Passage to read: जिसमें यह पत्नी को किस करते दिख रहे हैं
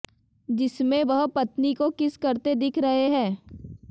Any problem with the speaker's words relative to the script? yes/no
yes